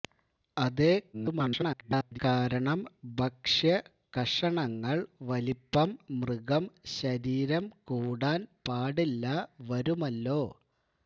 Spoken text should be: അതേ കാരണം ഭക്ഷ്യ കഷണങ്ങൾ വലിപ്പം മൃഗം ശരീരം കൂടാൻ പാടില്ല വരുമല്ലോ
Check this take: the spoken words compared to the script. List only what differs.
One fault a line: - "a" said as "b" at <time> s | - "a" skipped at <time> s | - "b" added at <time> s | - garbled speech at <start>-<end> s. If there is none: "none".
- garbled speech at 1.1-2.2 s